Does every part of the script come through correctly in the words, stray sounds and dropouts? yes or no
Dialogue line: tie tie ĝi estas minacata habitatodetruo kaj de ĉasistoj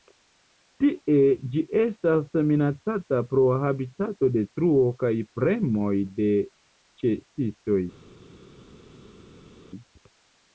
no